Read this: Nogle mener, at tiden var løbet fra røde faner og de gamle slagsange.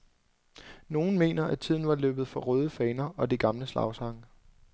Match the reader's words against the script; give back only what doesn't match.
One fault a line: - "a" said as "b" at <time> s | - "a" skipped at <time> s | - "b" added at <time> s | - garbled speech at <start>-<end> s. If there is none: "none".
none